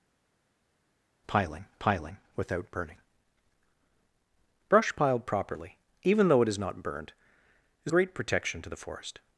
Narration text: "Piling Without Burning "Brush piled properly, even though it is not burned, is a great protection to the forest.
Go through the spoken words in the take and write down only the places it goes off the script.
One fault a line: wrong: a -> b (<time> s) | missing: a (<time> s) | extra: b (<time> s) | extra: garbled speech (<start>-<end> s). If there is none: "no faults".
extra: piling (1.8 s)
missing: a (7.9 s)